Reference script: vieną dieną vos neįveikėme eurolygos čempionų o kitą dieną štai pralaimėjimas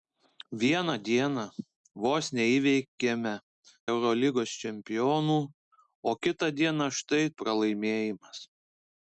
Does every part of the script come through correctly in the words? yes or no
yes